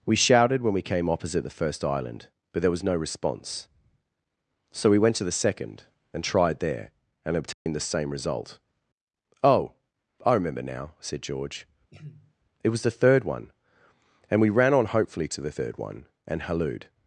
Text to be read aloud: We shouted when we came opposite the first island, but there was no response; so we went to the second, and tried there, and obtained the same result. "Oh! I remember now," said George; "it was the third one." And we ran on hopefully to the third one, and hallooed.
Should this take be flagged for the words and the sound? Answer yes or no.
yes